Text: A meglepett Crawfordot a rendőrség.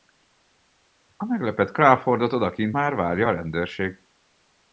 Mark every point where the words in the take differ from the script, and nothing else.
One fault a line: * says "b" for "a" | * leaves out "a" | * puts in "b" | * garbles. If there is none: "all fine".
* puts in "odakint már várja"